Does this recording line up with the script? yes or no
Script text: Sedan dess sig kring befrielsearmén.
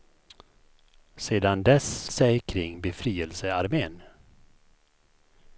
yes